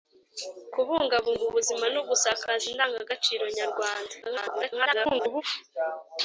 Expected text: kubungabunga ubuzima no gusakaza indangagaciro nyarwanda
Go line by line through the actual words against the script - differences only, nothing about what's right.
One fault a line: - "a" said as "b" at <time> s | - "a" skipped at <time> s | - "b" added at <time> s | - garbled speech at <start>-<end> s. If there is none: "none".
- garbled speech at 4.2-5.4 s